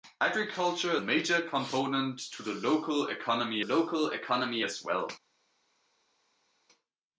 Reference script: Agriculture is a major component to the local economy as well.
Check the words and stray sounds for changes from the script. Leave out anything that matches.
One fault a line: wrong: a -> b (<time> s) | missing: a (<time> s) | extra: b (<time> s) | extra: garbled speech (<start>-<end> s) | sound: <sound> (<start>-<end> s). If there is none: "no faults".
missing: is (1.0 s)
extra: local economy (3.6 s)